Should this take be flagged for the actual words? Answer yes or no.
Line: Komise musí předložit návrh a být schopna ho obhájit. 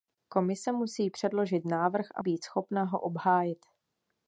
no